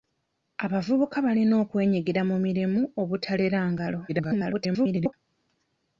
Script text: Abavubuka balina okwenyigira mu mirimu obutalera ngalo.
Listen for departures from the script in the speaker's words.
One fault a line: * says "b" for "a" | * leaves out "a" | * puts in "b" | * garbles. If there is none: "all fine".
* garbles